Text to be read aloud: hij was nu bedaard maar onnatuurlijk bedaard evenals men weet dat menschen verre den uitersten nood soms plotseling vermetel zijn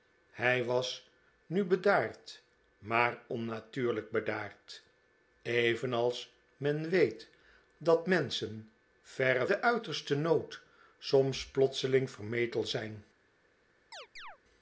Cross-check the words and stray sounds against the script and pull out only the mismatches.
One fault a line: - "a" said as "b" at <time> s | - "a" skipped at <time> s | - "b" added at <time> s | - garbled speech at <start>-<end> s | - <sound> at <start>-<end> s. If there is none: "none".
- chirp at 13.9-14.4 s